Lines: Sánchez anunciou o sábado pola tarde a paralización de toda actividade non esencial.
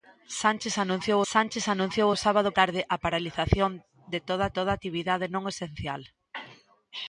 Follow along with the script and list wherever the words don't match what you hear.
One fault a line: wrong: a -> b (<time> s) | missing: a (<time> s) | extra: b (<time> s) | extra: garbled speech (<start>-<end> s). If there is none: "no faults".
extra: sánchez anunciou (1.3 s)
missing: pola (2.5 s)
extra: toda (4.5 s)